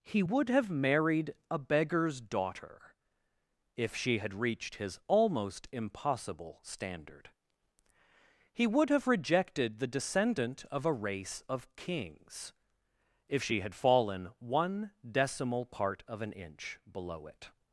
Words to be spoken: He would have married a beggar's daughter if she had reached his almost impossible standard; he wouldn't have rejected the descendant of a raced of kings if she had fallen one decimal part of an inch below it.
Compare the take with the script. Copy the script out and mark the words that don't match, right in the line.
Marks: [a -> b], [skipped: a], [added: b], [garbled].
He would have married a beggar's daughter if she had reached his almost impossible standard; he [wouldn't -> would] have rejected the descendant of a [raced -> race] of kings if she had fallen one decimal part of an inch below it.